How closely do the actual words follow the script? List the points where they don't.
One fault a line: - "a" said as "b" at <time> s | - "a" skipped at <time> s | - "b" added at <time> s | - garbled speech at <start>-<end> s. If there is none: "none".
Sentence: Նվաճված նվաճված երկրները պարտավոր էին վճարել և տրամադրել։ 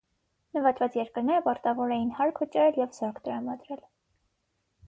- "նվաճված" skipped at 1.0 s
- "հարկ" added at 2.2 s
- "զորք" added at 3.0 s